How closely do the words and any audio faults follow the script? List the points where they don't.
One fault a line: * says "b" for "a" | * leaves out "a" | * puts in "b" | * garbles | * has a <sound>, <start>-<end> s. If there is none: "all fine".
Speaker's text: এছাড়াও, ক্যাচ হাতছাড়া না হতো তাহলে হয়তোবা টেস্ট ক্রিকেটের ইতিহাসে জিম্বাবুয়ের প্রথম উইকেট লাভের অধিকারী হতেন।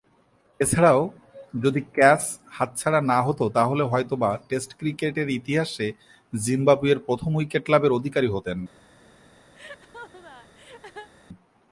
* puts in "যদি"
* has a laugh, 9.5-11.1 s